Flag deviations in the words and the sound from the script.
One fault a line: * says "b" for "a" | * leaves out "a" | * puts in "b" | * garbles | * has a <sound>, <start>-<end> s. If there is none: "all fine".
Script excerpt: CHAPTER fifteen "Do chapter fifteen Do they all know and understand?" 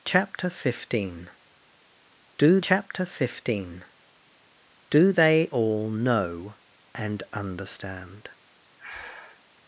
* has a breath, 8.8-9.4 s